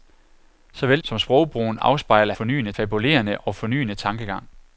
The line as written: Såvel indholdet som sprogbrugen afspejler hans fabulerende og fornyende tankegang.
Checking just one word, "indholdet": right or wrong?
wrong